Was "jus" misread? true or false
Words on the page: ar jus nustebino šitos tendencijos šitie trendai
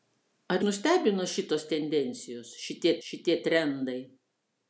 true